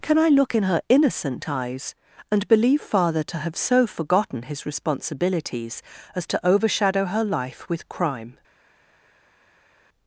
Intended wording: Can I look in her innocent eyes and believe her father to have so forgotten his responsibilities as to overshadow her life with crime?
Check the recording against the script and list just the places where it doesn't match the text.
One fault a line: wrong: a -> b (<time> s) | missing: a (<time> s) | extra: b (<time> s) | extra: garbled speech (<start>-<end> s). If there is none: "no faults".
missing: her (2.8 s)